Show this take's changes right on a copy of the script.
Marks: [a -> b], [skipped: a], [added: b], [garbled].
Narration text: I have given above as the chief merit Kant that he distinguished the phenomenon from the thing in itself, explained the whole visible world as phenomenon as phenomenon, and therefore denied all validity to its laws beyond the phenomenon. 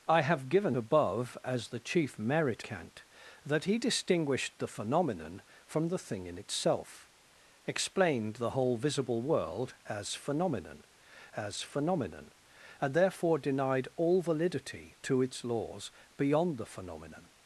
I have given above as the chief merit Kant that he distinguished the phenomenon from the thing in itself, explained the whole visible world as phenomenon as phenomenon, and therefore denied all validity to its laws beyond the phenomenon.